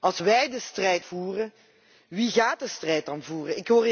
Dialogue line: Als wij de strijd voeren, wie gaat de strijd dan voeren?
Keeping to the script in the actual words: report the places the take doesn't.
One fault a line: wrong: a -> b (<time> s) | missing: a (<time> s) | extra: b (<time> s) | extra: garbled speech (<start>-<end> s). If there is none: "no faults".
no faults